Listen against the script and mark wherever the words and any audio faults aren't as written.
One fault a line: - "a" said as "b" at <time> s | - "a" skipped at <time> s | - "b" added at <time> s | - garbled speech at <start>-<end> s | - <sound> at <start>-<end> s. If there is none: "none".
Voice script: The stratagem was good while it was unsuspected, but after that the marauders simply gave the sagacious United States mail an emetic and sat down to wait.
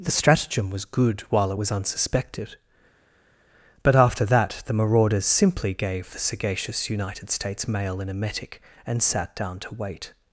none